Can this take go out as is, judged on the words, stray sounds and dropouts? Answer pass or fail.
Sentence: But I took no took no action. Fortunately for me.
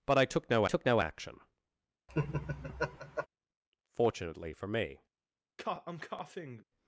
fail